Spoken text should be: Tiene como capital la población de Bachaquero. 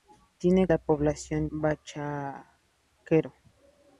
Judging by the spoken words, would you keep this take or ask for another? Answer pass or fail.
fail